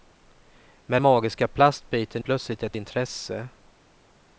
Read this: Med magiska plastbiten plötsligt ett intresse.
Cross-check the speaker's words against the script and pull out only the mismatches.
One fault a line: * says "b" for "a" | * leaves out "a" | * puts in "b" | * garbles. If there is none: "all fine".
all fine